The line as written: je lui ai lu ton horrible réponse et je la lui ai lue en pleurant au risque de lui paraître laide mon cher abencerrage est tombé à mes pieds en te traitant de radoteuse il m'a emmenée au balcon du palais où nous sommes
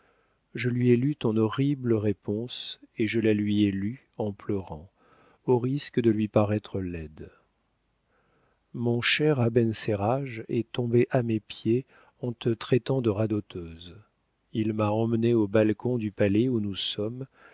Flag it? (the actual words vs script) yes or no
no